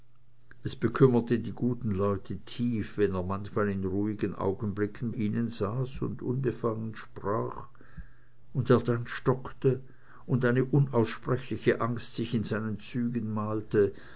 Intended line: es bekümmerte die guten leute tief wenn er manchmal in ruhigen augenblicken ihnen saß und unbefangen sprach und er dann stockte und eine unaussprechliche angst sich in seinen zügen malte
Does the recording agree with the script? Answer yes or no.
yes